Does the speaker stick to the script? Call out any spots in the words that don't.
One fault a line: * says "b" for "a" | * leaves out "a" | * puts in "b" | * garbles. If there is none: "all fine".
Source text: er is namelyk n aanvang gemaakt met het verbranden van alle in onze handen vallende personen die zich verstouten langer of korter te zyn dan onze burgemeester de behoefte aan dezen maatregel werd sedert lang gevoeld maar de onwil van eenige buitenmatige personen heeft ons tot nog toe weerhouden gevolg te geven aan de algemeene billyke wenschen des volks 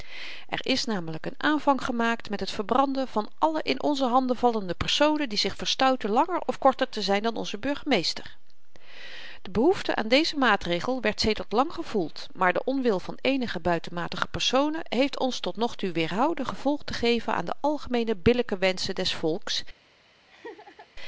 all fine